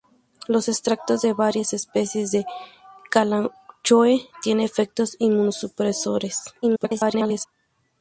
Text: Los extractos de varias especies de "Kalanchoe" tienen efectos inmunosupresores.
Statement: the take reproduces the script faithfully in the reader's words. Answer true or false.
false